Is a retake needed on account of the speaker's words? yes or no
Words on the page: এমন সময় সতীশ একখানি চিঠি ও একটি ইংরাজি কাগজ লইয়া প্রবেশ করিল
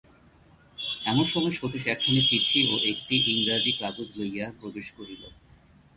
no